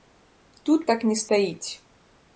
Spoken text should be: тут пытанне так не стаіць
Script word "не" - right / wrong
right